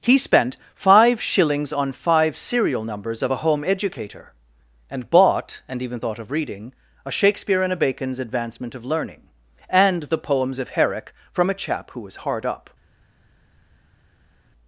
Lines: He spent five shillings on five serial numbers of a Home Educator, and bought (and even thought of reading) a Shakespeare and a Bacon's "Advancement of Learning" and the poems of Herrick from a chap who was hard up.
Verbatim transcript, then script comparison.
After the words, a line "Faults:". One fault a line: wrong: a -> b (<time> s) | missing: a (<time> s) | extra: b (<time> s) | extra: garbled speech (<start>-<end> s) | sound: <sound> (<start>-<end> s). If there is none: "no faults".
He spent five shillings on five serial numbers of a Home Educator, and bought (and even thought of reading) a Shakespeare and a Bacon's "Advancement of Learning" and the poems of Herrick from a chap who was hard up.
Faults:
no faults